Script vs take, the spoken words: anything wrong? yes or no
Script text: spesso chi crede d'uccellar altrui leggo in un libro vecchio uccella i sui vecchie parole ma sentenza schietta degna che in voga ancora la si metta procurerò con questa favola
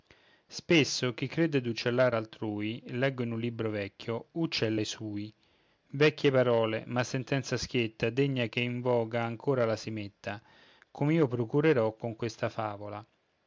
yes